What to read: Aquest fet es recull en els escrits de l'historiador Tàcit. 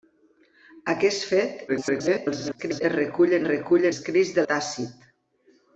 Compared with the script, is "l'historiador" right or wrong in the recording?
wrong